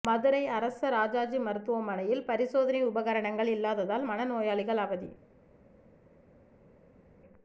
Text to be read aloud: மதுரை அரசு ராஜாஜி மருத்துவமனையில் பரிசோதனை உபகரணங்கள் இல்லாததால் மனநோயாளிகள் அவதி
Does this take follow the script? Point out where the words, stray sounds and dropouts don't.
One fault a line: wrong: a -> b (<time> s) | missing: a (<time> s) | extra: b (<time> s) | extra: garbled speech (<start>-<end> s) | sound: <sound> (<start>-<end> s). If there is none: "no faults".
no faults